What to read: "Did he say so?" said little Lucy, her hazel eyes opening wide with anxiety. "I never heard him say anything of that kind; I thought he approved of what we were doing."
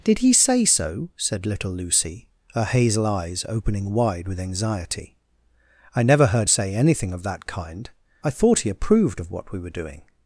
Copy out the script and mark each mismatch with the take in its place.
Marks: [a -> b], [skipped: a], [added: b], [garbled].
"Did he say so?" said little Lucy, her hazel eyes opening wide with anxiety. "I never heard [skipped: him] say anything of that kind; I thought he approved of what we were doing."